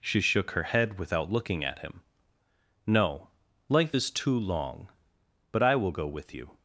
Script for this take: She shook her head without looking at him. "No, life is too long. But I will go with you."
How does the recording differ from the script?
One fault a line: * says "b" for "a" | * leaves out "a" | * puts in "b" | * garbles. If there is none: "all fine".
all fine